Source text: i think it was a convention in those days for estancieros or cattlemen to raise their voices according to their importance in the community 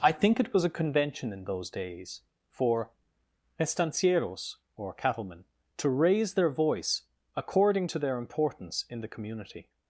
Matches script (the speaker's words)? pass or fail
fail